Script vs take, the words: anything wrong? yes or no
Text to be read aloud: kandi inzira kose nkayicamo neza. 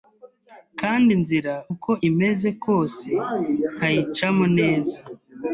yes